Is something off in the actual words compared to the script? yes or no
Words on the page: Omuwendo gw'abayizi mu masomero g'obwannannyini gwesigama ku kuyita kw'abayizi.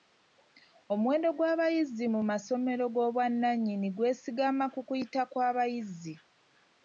no